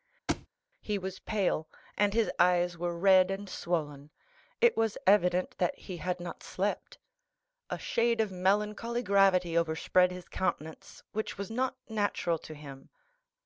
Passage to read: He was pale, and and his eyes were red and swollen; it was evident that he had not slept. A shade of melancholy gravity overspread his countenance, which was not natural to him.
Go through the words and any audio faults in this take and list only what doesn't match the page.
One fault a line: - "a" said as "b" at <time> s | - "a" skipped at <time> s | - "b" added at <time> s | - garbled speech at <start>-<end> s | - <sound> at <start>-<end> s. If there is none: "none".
- thud at 0.3-0.5 s
- "and" skipped at 2.1 s